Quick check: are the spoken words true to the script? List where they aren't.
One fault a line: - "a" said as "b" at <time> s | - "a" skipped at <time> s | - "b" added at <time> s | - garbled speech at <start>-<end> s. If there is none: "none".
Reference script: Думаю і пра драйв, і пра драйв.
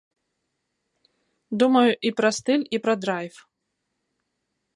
- "драйв" said as "стыль" at 2.4 s